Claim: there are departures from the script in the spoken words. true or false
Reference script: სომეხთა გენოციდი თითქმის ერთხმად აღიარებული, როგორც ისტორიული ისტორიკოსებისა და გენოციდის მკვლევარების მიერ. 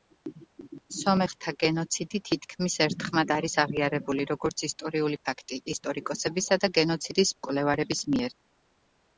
true